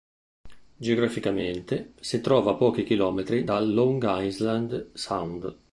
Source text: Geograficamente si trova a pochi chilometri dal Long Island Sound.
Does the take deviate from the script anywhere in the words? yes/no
no